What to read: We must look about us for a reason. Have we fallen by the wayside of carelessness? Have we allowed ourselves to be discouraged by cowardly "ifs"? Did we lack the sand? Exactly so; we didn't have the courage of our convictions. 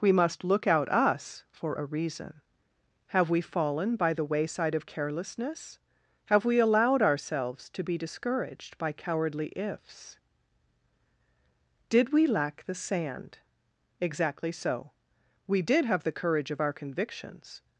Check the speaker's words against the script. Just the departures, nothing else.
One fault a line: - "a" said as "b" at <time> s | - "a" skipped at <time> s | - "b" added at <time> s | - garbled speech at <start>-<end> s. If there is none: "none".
- "about" said as "out" at 0.7 s
- "didn't" said as "did" at 15.6 s